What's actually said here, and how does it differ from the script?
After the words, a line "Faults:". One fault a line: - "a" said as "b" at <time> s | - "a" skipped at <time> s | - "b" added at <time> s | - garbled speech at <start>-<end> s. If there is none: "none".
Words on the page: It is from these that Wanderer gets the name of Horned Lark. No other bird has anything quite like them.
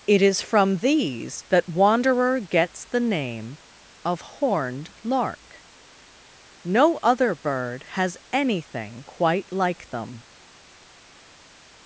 It is from these that Wanderer gets the name of Horned Lark. No other bird has anything quite like them.
Faults:
none